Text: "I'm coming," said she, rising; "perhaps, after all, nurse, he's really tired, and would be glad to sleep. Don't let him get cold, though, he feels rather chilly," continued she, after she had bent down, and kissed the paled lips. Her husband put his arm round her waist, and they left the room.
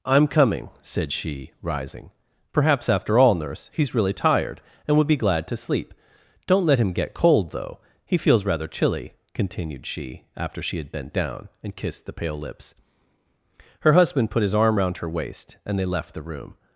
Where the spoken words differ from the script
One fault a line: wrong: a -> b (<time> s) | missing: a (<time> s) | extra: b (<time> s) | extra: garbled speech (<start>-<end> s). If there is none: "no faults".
wrong: paled -> pale (12.1 s)